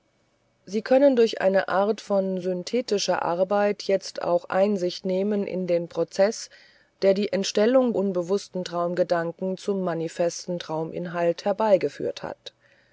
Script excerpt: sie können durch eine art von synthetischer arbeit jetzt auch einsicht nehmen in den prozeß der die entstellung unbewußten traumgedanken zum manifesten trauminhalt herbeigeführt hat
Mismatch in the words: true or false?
false